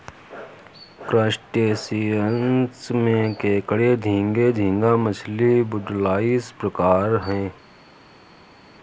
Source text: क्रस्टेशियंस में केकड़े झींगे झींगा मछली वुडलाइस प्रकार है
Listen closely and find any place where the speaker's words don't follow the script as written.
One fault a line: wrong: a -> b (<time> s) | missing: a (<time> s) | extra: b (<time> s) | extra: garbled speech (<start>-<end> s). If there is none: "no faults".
no faults